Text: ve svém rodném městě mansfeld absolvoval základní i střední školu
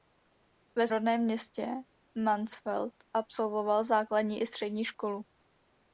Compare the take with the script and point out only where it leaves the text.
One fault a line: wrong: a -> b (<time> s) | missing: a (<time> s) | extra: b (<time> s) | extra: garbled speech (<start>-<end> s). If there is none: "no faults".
missing: svém (0.9 s)